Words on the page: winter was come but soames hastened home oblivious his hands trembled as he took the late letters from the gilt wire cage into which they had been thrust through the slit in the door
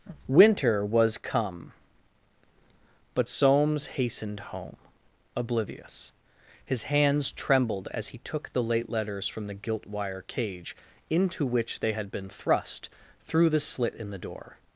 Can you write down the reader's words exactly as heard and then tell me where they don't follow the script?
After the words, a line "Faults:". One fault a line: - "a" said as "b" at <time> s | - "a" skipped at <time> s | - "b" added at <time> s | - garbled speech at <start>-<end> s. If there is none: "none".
winter was come but soames hastened home oblivious his hands trembled as he took the late letters from the gilt wire cage into which they had been thrust through the slit in the door
Faults:
none